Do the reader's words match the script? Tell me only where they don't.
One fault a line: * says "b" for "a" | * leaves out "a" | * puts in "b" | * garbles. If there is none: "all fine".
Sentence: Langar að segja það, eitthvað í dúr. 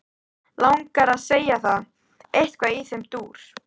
* puts in "þeim"